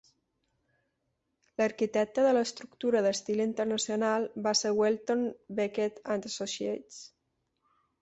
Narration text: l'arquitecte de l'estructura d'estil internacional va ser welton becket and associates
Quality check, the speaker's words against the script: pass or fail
pass